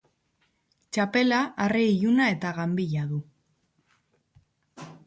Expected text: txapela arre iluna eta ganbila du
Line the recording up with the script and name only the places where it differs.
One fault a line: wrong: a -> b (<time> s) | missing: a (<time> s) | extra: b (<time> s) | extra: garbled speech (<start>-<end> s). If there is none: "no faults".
no faults